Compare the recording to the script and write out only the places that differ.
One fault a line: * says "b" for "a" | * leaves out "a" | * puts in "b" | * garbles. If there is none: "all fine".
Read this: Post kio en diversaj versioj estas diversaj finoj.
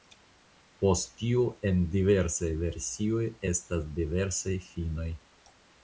* says "tio" for "kio"